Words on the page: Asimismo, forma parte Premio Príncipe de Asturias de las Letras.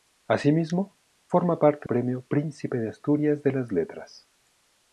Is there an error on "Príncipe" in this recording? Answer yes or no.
no